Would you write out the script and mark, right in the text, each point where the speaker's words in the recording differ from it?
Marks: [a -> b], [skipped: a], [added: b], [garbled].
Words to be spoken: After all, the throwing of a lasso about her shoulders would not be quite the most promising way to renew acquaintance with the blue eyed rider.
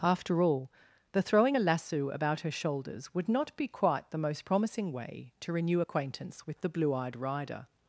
After all, the throwing [skipped: of] a lasso about her shoulders would not be quite the most promising way to renew acquaintance with the blue eyed rider.